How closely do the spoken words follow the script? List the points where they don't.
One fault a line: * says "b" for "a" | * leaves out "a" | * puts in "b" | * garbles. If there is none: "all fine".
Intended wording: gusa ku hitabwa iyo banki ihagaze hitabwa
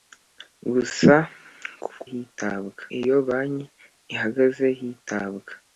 all fine